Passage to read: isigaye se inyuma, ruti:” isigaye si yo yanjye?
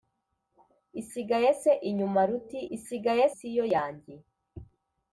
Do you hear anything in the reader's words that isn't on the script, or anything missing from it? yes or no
no